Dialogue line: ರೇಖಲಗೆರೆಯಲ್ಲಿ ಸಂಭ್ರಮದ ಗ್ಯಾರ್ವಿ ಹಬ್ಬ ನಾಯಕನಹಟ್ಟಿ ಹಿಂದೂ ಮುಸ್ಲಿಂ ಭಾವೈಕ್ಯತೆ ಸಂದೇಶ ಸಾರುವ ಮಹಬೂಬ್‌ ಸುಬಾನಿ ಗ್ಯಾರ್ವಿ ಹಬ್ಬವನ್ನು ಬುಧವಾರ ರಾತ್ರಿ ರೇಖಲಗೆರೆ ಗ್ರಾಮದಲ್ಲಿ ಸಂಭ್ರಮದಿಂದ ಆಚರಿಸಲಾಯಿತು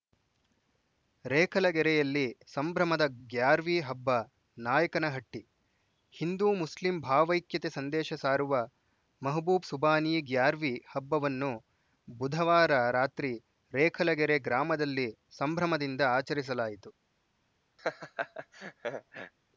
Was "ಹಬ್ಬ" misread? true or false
false